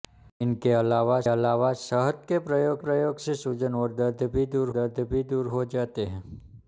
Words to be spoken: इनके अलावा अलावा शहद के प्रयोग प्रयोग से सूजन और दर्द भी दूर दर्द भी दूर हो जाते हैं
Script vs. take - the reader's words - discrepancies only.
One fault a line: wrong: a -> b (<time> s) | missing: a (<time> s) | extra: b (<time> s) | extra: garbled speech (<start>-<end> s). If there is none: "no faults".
no faults